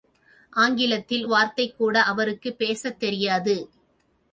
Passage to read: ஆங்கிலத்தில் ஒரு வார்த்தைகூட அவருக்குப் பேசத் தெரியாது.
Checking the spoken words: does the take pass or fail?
fail